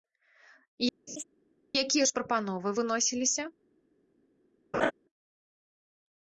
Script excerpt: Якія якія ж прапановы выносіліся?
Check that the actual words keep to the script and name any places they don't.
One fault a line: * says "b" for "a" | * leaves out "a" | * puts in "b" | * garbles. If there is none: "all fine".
* leaves out "якія"